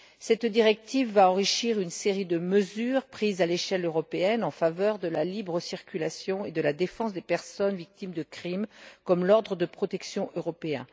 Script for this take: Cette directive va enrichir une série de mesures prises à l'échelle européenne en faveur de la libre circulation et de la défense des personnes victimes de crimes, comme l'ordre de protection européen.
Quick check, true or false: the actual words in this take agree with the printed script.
true